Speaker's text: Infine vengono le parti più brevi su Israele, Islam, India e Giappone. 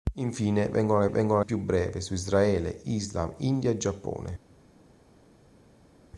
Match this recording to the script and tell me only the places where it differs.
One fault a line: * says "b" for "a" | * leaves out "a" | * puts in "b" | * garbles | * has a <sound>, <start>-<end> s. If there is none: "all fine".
* says "vengono" for "parti"